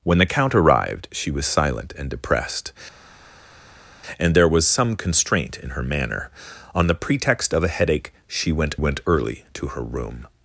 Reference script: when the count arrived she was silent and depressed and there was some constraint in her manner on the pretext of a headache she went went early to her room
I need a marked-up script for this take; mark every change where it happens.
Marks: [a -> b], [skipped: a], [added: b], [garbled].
when the count arrived she was silent and depressed and there was some constraint in her manner on the pretext of a headache she went went early to her room